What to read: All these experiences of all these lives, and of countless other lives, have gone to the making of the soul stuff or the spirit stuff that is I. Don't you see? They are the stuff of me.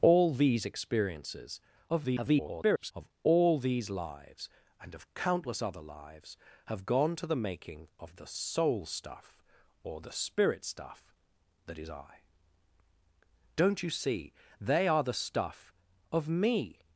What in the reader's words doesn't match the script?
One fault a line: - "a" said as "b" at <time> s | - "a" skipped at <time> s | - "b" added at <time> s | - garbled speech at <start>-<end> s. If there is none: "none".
- garbled speech at 1.9-2.9 s